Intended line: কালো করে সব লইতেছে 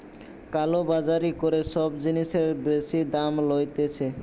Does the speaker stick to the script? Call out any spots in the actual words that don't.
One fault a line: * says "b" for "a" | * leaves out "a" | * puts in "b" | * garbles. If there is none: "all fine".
* puts in "বাজারি"
* puts in "জিনিসের বেশি দাম"